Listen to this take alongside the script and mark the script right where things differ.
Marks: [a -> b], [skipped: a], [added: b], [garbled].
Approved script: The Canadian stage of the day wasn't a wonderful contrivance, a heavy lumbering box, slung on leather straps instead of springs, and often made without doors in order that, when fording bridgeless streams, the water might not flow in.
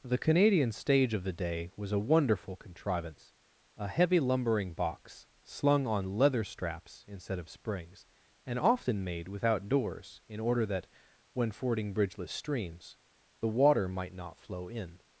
The Canadian stage of the day [wasn't -> was] a wonderful contrivance, a heavy lumbering box, slung on leather straps instead of springs, and often made without doors in order that, when fording bridgeless streams, the water might not flow in.